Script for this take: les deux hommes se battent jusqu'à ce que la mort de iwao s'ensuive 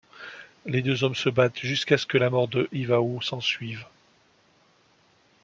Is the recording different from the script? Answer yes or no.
no